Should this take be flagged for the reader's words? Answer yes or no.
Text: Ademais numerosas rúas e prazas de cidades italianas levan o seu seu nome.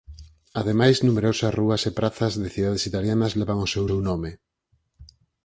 no